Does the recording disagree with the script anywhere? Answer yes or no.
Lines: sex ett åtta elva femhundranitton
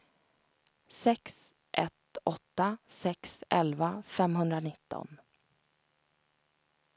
yes